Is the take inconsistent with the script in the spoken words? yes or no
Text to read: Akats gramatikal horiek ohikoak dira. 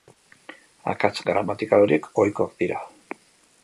no